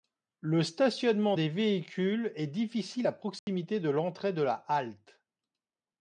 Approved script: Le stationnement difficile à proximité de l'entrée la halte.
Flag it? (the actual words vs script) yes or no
yes